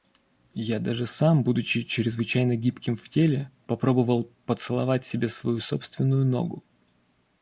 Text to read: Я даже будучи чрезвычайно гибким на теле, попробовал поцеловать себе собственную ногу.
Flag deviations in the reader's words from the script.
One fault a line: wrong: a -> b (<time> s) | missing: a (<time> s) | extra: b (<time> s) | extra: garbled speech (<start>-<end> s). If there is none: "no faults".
extra: сам (1.1 s)
wrong: на -> в (3.0 s)
extra: свою (5.3 s)